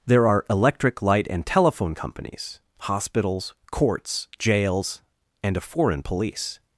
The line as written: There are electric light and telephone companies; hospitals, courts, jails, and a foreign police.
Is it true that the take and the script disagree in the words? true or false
false